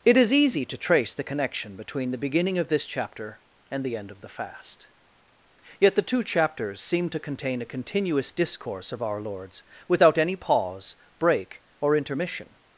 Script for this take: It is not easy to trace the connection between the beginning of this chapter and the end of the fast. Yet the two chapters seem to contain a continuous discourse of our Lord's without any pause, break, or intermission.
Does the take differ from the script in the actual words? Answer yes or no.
yes